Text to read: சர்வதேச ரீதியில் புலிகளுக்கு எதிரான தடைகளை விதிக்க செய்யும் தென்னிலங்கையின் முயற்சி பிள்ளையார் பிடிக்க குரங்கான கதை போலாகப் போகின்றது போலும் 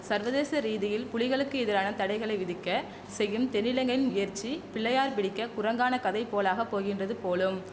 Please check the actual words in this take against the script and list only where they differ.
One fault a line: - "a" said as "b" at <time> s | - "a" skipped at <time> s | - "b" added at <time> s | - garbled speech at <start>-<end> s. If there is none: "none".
none